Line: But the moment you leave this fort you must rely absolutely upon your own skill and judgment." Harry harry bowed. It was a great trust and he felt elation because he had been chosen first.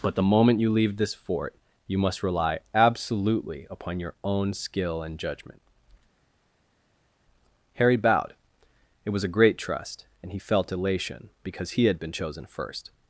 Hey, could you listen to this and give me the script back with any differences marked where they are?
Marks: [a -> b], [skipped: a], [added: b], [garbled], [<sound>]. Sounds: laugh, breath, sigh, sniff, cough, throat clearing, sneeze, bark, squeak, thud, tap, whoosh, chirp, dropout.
But the moment you leave this fort you must rely absolutely upon your own skill and judgment." Harry [skipped: harry] bowed. It was a great trust and he felt elation because he had been chosen first.